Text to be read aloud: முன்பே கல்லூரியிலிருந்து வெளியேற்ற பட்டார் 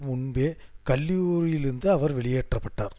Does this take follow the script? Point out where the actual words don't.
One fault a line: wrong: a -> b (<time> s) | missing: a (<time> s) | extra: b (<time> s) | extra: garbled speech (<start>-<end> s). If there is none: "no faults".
extra: அவர் (1.9 s)